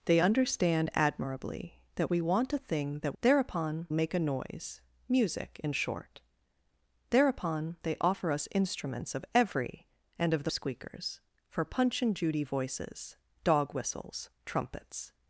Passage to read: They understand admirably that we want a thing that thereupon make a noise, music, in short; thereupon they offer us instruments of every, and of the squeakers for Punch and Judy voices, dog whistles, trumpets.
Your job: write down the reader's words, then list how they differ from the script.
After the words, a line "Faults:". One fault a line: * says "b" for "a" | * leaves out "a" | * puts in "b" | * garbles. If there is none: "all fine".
They understand admirably that we want a thing that thereupon make a noise, music, in short; thereupon they offer us instruments of every, and of the squeakers for Punch and Judy voices, dog whistles, trumpets.
Faults:
all fine